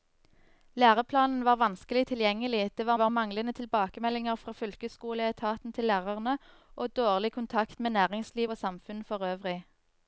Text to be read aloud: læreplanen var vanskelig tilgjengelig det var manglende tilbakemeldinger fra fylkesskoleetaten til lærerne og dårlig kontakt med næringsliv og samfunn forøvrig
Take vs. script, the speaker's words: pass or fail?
fail